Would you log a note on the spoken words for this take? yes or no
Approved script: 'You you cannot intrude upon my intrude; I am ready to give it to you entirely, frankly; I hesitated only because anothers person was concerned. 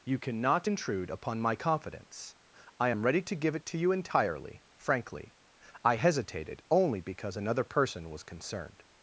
yes